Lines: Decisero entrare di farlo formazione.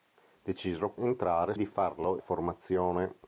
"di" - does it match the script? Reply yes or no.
yes